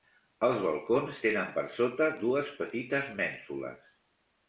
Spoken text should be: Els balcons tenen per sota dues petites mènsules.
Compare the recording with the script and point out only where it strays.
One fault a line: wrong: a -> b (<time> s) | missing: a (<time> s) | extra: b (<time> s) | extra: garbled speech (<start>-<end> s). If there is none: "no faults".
no faults